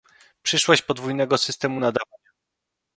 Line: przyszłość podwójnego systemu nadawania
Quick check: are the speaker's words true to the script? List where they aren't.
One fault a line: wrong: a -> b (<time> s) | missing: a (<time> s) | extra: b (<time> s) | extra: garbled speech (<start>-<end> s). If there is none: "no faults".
no faults